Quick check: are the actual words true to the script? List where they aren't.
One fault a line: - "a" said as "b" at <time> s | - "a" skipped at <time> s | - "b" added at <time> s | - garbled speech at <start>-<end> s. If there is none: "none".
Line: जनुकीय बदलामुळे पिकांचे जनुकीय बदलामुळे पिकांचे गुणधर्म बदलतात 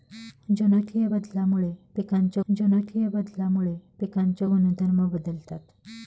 none